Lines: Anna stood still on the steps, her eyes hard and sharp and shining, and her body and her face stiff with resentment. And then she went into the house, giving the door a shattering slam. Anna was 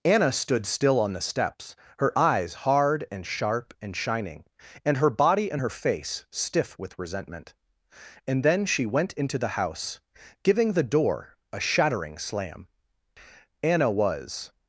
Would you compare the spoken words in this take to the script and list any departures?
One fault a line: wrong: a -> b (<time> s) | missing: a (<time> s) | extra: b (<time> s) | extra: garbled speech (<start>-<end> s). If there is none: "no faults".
no faults